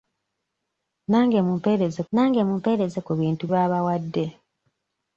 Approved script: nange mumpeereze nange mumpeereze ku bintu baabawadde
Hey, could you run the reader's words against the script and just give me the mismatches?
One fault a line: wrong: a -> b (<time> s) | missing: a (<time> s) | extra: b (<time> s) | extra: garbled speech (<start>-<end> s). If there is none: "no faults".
no faults